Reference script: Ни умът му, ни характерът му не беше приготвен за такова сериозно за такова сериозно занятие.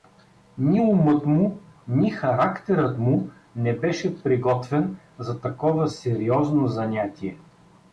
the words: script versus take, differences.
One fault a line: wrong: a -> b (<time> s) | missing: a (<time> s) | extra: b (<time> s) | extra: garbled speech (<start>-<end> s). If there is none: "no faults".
missing: за такова сериозно (6.7 s)